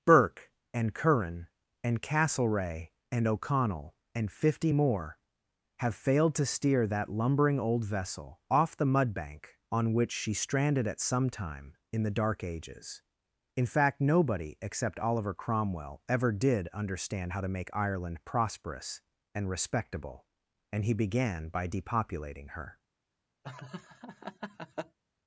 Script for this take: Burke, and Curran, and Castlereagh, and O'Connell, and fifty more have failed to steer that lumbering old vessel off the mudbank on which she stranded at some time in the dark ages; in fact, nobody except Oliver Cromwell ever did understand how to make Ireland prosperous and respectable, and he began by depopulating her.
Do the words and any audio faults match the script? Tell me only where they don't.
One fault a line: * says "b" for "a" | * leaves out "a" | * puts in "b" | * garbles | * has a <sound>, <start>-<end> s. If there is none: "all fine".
* has a laugh, 23.4-25.0 s